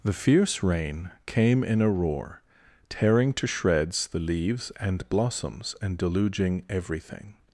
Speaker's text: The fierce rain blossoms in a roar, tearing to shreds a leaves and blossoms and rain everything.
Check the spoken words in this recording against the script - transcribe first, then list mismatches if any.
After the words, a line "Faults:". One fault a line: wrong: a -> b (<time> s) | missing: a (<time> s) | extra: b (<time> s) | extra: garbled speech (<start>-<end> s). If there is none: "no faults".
The fierce rain came in a roar, tearing to shreds the leaves and blossoms and deluging everything.
Faults:
wrong: blossoms -> came (1.3 s)
wrong: a -> the (4.1 s)
wrong: rain -> deluging (6.0 s)